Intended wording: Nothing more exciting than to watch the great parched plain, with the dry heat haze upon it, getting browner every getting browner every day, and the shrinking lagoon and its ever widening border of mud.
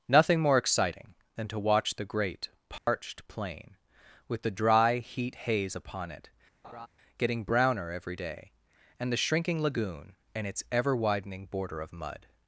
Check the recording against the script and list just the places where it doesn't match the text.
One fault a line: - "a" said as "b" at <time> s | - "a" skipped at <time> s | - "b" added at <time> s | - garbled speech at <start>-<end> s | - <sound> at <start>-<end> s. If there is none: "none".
- dropout at 2.8-2.9 s
- laugh at 6.6-6.9 s
- "getting browner every" skipped at 8.2 s